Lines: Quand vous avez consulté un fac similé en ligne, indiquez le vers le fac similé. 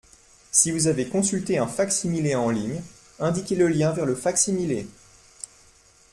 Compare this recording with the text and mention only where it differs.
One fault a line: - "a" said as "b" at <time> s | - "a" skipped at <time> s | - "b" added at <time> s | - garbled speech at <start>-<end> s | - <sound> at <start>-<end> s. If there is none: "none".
- "Quand" said as "Si" at 0.5 s
- "lien" added at 3.7 s